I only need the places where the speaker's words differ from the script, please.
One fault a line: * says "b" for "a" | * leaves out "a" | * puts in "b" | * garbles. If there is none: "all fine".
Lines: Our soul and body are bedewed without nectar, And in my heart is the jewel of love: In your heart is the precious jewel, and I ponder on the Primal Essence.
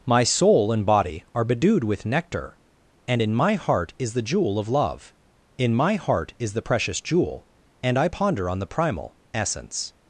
* says "My" for "Our"
* says "with" for "without"
* says "my" for "your"